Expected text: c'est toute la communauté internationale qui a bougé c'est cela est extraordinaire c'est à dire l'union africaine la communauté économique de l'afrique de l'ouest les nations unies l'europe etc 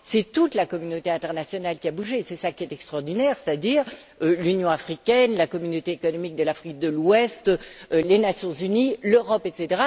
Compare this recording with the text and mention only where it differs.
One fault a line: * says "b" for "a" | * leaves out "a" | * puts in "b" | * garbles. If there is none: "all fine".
* puts in "qui"